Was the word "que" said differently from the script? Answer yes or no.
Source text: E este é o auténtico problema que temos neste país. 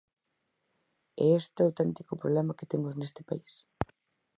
no